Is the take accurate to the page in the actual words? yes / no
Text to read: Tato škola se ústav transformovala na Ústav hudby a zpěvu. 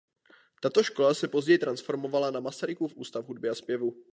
no